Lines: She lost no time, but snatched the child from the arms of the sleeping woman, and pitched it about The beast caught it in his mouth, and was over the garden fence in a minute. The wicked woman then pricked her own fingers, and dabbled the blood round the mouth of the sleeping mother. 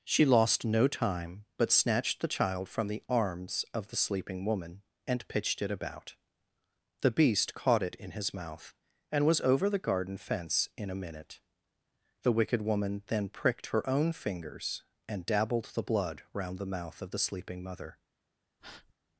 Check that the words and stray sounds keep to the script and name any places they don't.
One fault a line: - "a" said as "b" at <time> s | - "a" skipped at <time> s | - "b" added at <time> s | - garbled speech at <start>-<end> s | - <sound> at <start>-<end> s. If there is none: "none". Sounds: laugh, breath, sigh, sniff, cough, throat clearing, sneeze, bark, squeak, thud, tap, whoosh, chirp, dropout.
- breath at 18.6-18.9 s